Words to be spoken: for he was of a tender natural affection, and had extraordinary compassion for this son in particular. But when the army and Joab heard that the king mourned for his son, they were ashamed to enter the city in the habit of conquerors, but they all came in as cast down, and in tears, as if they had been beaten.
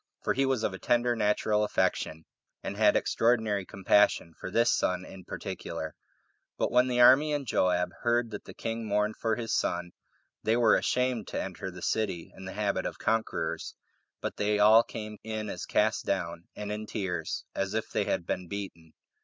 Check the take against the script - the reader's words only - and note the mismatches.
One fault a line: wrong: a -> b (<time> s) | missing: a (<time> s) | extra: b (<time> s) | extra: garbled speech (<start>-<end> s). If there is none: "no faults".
no faults